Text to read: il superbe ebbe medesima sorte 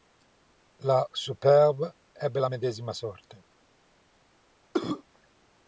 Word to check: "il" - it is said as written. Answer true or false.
false